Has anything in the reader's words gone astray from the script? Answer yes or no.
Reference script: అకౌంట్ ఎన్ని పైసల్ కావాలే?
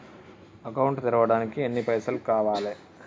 yes